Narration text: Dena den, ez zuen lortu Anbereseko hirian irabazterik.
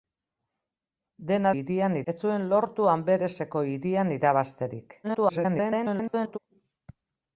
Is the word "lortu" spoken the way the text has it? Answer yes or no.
yes